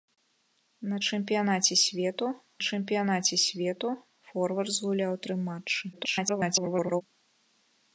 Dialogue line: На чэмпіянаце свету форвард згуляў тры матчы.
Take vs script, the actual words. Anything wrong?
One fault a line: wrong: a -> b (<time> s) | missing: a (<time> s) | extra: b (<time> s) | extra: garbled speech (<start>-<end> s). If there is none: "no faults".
extra: чэмпіянаце свету (2.7 s)
extra: garbled speech (5.9-7.0 s)